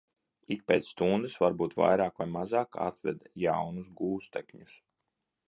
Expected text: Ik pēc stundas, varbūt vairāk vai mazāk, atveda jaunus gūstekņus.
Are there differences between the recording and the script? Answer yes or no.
no